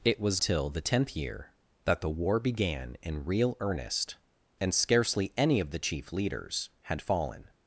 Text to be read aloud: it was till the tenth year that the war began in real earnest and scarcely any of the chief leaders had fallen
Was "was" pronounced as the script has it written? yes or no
yes